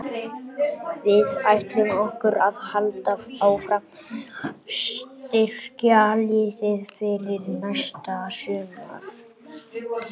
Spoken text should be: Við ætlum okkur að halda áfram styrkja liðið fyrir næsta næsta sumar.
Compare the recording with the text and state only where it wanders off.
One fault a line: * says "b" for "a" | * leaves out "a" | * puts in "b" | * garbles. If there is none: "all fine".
* puts in "að"
* leaves out "næsta"